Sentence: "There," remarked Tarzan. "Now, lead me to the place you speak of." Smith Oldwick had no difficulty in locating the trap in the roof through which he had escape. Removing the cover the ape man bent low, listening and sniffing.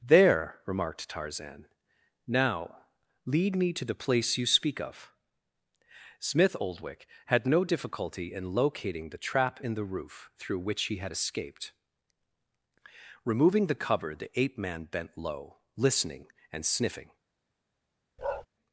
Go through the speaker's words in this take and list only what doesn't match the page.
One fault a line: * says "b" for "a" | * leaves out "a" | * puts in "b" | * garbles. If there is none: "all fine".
* says "escaped" for "escape"